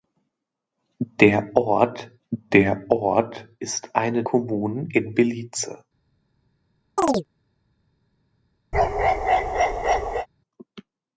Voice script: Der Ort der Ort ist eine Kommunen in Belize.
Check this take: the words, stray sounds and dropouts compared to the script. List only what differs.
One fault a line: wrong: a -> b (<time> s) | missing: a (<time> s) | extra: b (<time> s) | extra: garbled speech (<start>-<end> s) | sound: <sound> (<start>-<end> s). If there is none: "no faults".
sound: chirp (7.0-7.3 s)
sound: bark (8.7-10.3 s)